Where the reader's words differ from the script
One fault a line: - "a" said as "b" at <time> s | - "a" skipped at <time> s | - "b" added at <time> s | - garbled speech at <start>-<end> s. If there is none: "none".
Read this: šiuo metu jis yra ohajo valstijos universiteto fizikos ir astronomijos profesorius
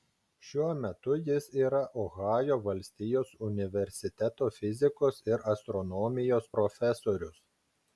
none